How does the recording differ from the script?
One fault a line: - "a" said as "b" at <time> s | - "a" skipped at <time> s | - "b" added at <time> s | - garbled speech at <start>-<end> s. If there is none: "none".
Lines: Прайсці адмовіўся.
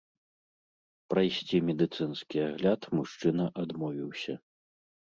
- "медыцынскі агляд мужчына" added at 1.7 s